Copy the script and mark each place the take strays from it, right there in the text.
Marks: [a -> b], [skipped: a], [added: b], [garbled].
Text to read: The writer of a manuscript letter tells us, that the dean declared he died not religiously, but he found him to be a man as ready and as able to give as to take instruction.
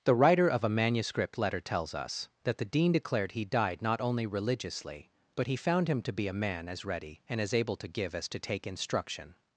The writer of a manuscript letter tells us, that the dean declared he died not [added: only] religiously, but he found him to be a man as ready and as able to give as to take instruction.